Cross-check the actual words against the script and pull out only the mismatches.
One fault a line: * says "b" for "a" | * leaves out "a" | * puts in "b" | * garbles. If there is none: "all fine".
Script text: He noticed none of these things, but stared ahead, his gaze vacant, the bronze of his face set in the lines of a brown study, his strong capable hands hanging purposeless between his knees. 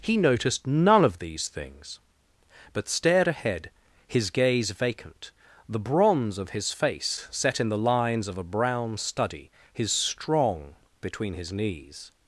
* leaves out "capable hands hanging purposeless"